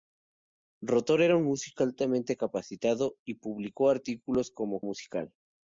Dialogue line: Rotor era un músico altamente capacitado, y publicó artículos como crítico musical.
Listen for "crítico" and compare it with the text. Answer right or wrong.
wrong